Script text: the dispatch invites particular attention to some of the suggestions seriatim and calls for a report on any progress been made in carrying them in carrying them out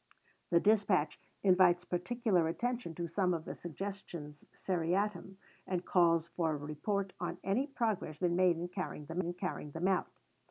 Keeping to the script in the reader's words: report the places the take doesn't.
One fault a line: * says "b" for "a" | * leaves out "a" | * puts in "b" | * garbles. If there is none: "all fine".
all fine